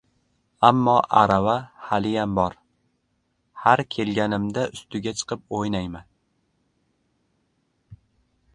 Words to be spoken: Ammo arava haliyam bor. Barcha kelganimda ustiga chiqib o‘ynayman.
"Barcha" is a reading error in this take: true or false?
true